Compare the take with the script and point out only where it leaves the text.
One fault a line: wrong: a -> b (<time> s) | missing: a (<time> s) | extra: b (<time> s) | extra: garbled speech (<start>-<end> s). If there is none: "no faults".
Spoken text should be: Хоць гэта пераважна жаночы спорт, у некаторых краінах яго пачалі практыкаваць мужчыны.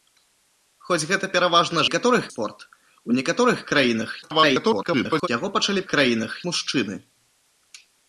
wrong: жаночы -> некаторых (1.8 s)
extra: garbled speech (4.2-5.3 s)
wrong: практыкаваць -> краінах (5.9 s)